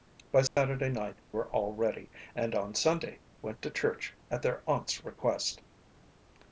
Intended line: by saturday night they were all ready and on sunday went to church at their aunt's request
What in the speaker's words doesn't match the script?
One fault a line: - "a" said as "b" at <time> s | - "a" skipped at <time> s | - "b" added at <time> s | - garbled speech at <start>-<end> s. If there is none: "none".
- "they" skipped at 1.2 s